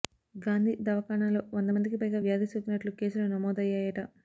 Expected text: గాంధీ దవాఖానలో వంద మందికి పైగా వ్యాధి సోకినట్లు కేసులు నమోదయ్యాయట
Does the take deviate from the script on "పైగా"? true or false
false